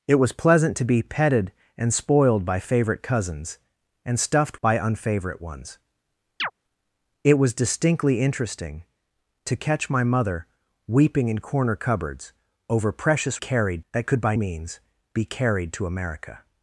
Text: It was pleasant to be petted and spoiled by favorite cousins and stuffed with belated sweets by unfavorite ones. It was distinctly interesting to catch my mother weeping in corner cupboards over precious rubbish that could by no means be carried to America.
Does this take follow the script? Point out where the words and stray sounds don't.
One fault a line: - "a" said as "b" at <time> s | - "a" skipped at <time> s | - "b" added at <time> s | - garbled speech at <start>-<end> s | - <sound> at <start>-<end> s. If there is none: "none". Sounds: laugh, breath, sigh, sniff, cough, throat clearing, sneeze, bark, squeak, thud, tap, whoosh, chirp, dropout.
- "with belated sweets" skipped at 4.6 s
- chirp at 6.4-6.5 s
- "rubbish" said as "carried" at 13.4 s
- "no" skipped at 14.4 s